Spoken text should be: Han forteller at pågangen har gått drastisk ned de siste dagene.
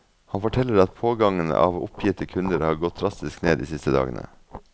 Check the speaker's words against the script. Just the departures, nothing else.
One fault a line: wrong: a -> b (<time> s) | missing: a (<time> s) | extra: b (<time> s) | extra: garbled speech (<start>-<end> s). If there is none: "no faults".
extra: av oppgitte kunder (1.5 s)